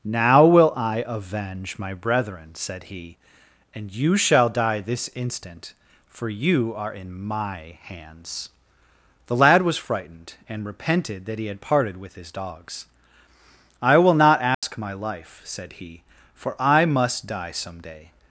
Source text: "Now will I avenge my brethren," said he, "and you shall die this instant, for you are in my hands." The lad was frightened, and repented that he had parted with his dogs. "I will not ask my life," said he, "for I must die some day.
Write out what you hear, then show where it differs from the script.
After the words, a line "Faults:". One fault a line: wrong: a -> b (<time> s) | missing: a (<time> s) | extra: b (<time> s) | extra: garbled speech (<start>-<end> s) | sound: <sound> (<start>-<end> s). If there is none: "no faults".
"Now will I avenge my brethren," said he, "and you shall die this instant, for you are in my hands." The lad was frightened, and repented that he had parted with his dogs. "I will not ask my life," said he, "for I must die some day.
Faults:
sound: dropout (14.5-14.6 s)